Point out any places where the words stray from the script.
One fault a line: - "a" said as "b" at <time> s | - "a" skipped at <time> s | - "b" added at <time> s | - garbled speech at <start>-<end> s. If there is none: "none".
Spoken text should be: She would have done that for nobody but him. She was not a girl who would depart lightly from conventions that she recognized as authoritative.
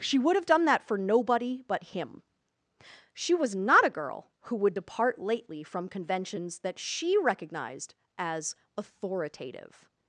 - "lightly" said as "lately" at 5.2 s